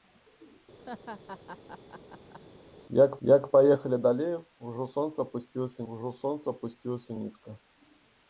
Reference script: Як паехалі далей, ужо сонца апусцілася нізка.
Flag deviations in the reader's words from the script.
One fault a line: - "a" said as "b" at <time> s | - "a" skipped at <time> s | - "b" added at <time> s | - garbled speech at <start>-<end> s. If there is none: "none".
- "як" added at 3.3 s
- "ужо сонца апусцілася" added at 5.9 s